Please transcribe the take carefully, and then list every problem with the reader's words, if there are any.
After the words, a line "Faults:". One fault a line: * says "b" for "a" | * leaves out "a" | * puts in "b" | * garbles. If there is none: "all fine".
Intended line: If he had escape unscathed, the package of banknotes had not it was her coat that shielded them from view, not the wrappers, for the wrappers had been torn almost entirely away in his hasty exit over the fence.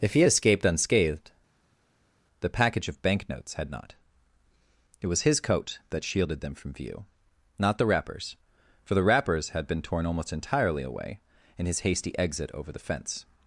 If he had escaped unscathed, the package of banknotes had not it was his coat that shielded them from view, not the wrappers, for the wrappers had been torn almost entirely away in his hasty exit over the fence.
Faults:
* says "escaped" for "escape"
* says "his" for "her"